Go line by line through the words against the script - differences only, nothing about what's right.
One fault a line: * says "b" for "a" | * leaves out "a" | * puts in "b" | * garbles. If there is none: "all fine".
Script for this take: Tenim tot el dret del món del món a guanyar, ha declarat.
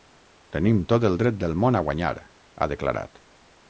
* leaves out "del món"